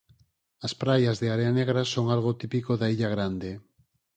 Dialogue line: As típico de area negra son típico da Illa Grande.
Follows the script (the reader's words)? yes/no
no